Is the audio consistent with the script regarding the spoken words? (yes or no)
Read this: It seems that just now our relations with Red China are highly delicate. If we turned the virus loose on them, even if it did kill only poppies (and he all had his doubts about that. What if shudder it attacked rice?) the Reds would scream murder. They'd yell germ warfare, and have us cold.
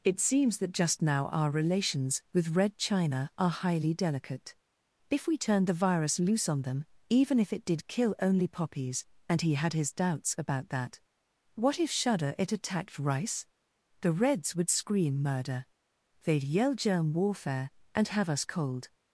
no